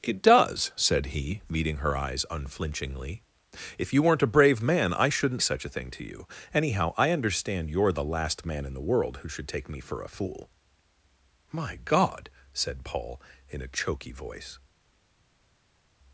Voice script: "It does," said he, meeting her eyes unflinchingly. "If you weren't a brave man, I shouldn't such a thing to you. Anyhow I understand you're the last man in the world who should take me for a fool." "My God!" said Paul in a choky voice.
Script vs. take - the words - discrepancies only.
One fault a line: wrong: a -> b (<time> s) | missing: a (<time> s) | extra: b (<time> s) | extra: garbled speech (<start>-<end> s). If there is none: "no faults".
no faults